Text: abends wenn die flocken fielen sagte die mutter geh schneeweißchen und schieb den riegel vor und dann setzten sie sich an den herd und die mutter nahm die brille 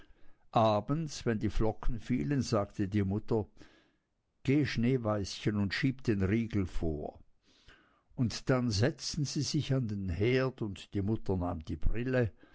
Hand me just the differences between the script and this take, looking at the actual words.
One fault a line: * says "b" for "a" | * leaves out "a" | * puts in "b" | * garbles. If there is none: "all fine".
all fine